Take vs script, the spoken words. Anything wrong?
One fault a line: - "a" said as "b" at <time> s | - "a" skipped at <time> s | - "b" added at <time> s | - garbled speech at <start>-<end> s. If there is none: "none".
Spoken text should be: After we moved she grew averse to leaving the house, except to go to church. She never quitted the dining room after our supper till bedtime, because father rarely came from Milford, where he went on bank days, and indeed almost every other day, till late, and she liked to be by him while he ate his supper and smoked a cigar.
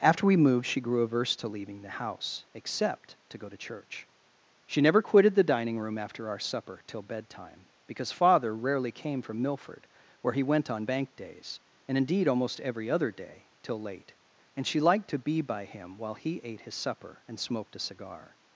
none